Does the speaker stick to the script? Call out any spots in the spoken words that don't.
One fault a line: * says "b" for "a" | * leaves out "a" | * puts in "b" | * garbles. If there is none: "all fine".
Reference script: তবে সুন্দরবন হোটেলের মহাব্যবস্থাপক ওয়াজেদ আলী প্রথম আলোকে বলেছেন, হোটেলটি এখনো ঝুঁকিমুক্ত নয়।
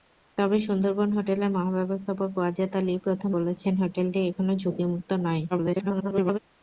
* leaves out "আলোকে"
* garbles